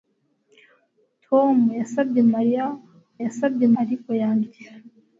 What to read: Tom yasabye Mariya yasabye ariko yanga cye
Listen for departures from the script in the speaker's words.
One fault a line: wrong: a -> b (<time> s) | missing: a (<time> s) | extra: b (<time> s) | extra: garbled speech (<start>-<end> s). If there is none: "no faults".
no faults